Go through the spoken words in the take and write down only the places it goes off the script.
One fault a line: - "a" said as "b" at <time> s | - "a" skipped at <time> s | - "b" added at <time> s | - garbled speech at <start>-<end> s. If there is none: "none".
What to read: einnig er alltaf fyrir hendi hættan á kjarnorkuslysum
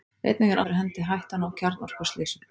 - "alltaf" skipped at 0.6 s